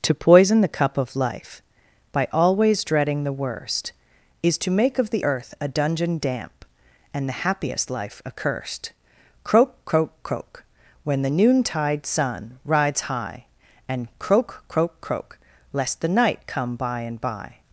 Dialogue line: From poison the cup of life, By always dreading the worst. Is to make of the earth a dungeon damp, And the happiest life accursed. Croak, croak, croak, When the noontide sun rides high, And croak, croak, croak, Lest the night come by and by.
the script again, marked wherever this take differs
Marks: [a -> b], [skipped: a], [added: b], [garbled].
[From -> To] poison the cup of life, By always dreading the worst. Is to make of the earth a dungeon damp, And the happiest life accursed. Croak, croak, croak, When the noontide sun rides high, And croak, croak, croak, Lest the night come by and by.